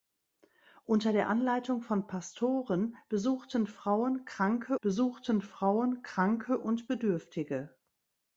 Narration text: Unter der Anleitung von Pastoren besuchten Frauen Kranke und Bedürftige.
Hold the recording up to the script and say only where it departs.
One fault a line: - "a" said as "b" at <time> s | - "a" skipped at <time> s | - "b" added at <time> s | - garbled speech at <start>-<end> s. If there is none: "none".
- "besuchten Frauen Kranke" added at 4.8 s